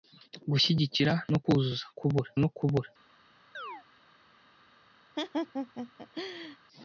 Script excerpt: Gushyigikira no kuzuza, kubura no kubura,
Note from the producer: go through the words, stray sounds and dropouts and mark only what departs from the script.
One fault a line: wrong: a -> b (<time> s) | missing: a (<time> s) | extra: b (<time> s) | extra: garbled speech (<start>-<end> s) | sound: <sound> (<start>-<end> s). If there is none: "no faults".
sound: chirp (3.5-3.8 s)
sound: laugh (5.2-6.6 s)